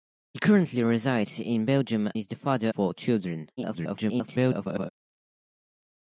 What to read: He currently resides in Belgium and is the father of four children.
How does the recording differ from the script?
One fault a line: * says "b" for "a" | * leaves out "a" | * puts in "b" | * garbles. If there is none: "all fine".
* leaves out "and"
* leaves out "of"
* garbles